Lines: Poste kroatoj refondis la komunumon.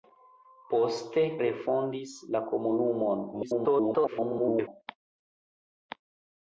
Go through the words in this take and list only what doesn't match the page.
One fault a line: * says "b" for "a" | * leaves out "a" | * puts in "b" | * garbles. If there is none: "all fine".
* leaves out "kroatoj"
* garbles